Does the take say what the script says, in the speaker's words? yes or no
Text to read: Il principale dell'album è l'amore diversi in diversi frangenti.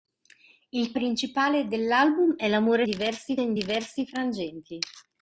yes